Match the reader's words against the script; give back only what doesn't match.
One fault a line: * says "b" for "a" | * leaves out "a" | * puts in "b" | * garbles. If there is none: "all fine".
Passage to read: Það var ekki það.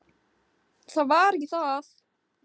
all fine